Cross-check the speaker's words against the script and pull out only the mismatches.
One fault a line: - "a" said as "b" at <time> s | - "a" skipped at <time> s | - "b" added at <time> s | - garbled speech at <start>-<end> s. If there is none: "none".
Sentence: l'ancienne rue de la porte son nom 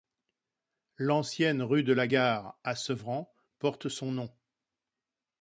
- "gare à sevran" added at 2.0 s